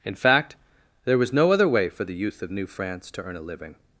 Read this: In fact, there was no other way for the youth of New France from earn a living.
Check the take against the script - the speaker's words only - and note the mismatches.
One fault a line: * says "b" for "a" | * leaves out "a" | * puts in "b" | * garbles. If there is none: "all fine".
* says "to" for "from"